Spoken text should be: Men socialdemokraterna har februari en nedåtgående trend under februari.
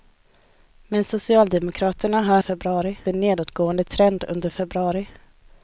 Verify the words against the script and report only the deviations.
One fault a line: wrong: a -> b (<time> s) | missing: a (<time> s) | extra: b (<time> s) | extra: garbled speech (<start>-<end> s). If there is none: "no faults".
no faults